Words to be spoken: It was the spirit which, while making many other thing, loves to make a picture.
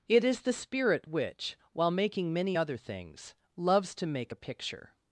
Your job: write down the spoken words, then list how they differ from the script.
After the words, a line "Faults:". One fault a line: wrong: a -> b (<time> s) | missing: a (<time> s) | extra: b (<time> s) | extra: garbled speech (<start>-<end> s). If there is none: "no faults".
It is the spirit which, while making many other things, loves to make a picture.
Faults:
wrong: was -> is (0.2 s)
wrong: thing -> things (2.8 s)